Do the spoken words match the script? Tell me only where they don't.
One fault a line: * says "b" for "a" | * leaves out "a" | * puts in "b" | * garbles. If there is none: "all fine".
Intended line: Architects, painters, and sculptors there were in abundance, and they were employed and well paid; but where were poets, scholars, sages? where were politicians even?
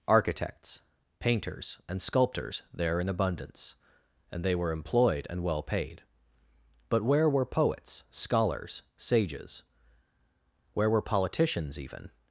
* leaves out "were"